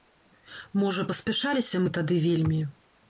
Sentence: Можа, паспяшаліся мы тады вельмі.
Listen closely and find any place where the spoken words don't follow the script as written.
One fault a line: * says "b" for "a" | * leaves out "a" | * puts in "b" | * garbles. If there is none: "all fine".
all fine